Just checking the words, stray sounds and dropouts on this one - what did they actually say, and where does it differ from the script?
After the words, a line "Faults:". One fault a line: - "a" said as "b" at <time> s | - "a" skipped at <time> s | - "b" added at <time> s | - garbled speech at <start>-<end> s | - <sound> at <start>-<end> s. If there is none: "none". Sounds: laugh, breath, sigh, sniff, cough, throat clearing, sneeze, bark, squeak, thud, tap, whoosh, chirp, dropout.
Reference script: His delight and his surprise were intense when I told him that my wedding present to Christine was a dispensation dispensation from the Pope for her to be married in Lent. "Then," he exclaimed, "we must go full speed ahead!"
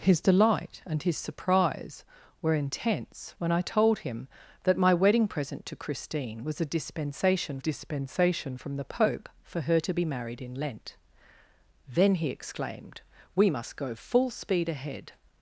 His delight and his surprise were intense when I told him that my wedding present to Christine was a dispensation dispensation from the Pope for her to be married in Lent. "Then," he exclaimed, "we must go full speed ahead!"
Faults:
none